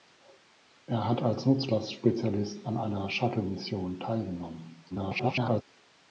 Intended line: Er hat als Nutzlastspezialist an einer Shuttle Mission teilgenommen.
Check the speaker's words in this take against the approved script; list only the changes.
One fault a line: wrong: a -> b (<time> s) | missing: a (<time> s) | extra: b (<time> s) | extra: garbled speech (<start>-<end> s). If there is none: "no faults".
extra: garbled speech (4.9-5.6 s)